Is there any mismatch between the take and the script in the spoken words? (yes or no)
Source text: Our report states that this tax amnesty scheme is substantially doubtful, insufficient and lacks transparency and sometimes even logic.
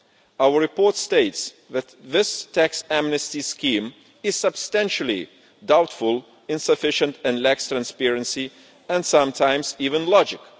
no